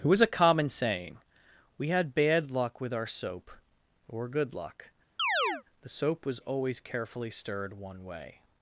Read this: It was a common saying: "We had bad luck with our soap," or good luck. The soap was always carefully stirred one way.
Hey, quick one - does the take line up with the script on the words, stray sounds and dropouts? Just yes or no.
no